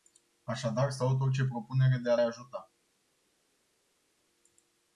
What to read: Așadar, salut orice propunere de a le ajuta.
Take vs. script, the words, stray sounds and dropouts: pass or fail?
fail